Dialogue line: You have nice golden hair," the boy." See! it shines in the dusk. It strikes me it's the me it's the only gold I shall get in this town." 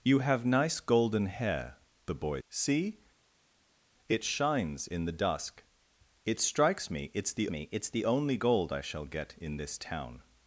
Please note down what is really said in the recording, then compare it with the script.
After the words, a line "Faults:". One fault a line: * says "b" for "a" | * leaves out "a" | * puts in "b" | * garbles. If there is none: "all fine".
You have nice golden hair," the boy." See! it shines in the dusk. It strikes me it's the me it's the only gold I shall get in this town."
Faults:
all fine